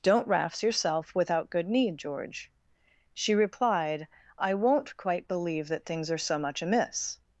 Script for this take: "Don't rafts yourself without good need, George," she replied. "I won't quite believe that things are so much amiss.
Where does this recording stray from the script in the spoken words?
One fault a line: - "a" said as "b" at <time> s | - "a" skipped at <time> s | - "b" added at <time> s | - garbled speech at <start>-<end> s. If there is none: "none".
none